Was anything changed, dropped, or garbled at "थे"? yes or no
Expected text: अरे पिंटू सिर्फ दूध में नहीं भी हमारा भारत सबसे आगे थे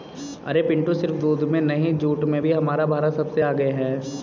yes